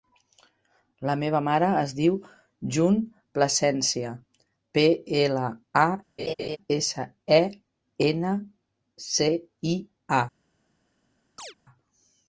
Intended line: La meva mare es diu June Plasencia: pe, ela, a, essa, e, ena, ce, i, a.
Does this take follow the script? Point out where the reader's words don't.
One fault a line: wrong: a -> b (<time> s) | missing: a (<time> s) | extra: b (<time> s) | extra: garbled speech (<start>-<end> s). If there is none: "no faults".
no faults